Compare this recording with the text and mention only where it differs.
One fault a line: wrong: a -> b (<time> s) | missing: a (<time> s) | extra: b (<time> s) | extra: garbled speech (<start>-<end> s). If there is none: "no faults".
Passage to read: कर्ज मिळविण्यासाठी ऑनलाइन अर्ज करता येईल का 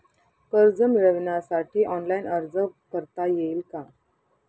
no faults